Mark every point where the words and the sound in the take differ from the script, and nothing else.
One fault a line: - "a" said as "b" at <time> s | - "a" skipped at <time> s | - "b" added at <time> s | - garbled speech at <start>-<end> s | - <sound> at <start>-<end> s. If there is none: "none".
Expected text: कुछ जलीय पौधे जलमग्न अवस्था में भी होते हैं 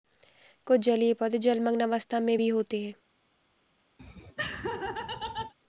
- laugh at 4.0-5.5 s